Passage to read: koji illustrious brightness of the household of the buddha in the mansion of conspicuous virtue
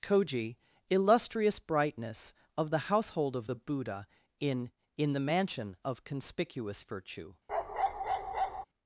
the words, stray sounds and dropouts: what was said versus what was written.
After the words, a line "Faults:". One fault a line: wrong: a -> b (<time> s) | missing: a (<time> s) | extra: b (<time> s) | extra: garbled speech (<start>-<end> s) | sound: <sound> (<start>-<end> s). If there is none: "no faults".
koji illustrious brightness of the household of the buddha in in the mansion of conspicuous virtue
Faults:
extra: in (5.0 s)
sound: bark (7.5-8.7 s)